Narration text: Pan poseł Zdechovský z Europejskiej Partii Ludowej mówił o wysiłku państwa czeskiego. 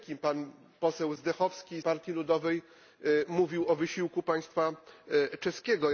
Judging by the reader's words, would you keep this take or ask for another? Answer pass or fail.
fail